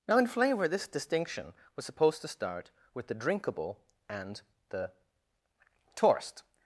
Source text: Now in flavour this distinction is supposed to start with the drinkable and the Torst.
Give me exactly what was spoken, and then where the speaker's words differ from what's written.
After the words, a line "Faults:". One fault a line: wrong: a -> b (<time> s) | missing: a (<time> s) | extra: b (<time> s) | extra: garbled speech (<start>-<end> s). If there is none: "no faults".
Now in flavour this distinction was supposed to start with the drinkable and the Torst.
Faults:
wrong: is -> was (1.8 s)